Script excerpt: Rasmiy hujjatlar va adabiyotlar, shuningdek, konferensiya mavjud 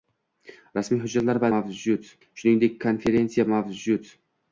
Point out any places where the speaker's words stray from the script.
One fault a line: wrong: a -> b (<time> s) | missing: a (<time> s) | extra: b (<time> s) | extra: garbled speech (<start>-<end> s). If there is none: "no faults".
wrong: adabiyotlar -> mavjud (1.6 s)